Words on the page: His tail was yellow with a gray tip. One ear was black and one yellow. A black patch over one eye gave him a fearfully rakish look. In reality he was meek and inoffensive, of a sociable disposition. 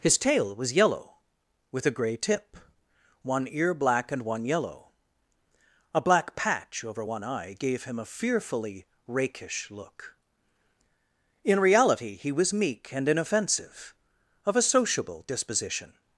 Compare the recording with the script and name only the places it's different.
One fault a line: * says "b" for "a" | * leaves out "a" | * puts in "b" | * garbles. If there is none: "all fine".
* leaves out "was"